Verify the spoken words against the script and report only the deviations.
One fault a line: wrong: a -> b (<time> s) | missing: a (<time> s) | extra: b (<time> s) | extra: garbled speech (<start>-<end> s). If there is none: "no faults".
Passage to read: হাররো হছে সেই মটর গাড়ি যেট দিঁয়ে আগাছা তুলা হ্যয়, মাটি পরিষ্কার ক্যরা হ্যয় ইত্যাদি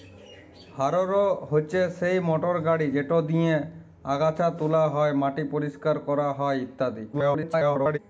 extra: garbled speech (7.1-8.0 s)